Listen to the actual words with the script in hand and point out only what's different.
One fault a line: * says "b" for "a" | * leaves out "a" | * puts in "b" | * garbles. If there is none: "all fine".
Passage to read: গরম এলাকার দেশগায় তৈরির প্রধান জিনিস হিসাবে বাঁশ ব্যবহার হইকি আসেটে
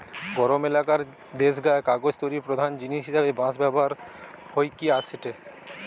* puts in "কাগজ"